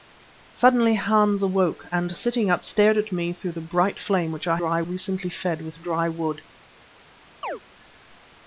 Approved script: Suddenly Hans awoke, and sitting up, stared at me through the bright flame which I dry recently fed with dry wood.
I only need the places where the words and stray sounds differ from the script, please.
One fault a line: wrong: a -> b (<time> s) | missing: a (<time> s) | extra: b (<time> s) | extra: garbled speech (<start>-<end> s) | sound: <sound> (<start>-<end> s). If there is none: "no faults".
sound: chirp (7.4-7.6 s)